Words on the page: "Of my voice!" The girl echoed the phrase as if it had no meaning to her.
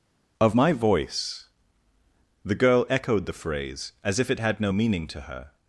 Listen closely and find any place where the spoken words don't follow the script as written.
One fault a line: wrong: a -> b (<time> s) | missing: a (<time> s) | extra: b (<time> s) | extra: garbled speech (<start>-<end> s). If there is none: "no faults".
no faults